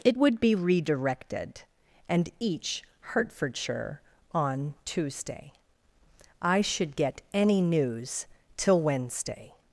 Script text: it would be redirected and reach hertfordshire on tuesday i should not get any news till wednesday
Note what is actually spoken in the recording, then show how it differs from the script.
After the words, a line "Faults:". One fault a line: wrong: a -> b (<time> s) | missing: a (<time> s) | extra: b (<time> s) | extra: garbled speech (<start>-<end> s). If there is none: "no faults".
it would be redirected and each hertfordshire on tuesday i should get any news till wednesday
Faults:
wrong: reach -> each (2.4 s)
missing: not (6.9 s)